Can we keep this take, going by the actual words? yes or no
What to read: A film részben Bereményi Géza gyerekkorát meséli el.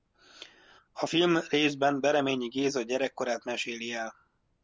yes